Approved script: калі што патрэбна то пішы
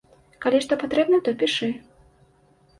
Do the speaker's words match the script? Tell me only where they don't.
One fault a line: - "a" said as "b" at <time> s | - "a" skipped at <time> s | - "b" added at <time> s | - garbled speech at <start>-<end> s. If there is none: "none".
none